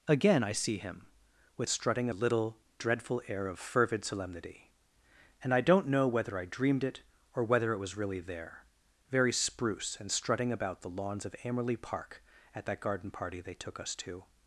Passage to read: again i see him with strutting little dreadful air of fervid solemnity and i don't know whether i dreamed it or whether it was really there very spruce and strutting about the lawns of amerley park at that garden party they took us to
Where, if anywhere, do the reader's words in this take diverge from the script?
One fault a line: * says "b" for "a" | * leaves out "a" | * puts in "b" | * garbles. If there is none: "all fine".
all fine